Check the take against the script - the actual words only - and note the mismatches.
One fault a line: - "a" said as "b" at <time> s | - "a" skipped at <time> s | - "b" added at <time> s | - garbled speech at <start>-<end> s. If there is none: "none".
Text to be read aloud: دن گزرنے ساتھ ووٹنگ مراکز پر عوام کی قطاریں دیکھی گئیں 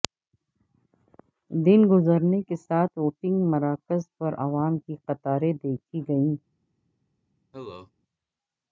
- "کے" added at 2.4 s